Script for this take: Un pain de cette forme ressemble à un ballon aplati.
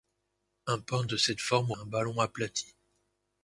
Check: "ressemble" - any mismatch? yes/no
yes